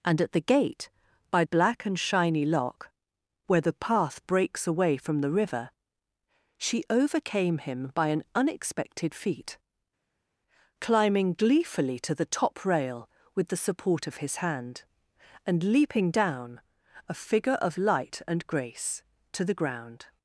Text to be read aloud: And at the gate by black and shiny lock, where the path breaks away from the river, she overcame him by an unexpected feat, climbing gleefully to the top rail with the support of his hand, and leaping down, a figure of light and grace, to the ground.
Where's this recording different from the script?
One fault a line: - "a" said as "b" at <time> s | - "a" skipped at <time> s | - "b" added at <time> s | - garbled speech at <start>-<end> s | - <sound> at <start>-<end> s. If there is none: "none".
none